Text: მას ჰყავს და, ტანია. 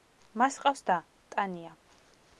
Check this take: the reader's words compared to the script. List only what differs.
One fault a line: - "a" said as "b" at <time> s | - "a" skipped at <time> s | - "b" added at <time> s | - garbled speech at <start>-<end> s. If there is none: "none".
none